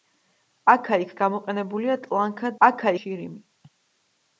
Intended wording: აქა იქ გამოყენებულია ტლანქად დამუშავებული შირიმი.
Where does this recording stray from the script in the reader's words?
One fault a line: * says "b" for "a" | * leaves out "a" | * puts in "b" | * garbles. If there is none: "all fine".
* says "აქა" for "დამუშავებული"